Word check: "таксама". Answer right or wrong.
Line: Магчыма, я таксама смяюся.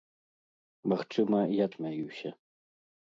wrong